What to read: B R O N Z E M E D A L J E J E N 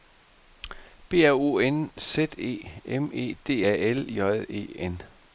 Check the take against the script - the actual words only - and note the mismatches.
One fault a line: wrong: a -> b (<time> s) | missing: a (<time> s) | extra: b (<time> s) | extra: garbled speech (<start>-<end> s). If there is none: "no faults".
missing: J E (4.7 s)